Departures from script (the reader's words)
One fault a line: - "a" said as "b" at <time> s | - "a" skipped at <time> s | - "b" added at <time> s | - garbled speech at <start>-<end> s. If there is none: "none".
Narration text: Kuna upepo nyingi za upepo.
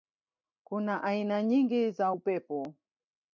- "upepo" said as "aina" at 1.0 s